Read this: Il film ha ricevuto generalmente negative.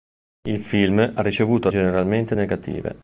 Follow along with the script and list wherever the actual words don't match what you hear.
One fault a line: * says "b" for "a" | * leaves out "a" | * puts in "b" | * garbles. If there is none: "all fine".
all fine